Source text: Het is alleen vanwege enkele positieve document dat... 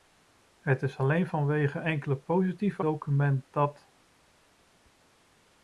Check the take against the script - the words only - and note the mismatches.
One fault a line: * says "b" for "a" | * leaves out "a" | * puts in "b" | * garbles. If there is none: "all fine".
all fine